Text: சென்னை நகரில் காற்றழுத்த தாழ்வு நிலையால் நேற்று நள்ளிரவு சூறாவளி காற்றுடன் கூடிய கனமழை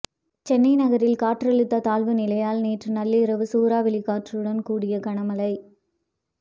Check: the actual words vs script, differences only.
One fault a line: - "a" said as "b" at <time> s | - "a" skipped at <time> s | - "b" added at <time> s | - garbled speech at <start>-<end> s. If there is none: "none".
none